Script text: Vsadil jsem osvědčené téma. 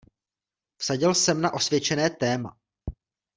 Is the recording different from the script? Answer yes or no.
yes